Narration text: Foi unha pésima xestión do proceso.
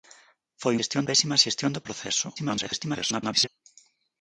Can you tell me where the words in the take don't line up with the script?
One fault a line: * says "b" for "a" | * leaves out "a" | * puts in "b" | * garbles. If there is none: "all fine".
* says "xestión" for "unha"
* garbles